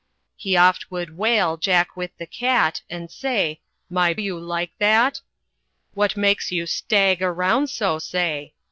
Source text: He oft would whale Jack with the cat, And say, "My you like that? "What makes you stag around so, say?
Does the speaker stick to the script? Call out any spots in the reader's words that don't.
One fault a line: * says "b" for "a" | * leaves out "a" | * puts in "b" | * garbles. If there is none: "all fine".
all fine